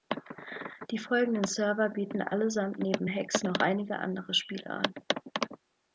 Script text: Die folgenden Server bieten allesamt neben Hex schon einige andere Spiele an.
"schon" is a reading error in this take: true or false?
true